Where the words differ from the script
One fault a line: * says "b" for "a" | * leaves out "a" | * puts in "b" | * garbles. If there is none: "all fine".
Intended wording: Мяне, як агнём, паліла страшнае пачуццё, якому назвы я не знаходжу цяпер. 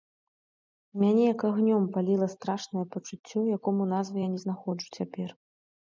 all fine